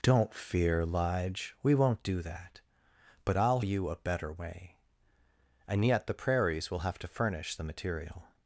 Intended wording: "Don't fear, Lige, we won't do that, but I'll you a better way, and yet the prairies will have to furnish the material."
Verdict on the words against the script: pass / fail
pass